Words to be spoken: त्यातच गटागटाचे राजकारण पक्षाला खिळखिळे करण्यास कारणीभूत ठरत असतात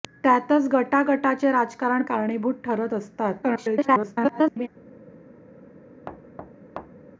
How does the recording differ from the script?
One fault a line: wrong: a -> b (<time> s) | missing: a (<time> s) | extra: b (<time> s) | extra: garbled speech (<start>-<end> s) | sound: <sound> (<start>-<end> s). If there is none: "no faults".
missing: पक्षाला खिळखिळे करण्यास (2.0 s)
extra: garbled speech (3.4-4.7 s)
sound: thud (6.1-7.1 s)